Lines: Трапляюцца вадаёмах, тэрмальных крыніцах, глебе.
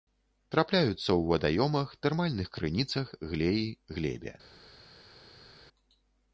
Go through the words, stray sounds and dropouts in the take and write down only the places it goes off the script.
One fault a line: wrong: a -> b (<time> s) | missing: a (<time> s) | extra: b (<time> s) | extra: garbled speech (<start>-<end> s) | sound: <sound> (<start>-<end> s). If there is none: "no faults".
extra: ў (1.0 s)
extra: глеі (3.4 s)